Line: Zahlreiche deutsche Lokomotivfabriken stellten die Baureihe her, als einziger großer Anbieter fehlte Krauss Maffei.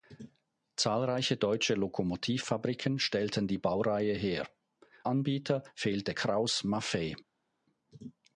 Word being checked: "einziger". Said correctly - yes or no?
no